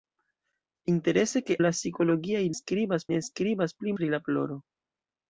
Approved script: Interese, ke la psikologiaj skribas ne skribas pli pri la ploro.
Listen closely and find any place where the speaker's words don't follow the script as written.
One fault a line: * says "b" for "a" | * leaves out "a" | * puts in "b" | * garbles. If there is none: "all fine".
all fine